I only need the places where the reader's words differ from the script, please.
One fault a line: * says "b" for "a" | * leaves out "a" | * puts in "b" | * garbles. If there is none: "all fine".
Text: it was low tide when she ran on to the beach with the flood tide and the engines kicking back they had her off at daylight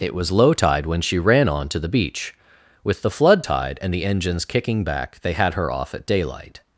all fine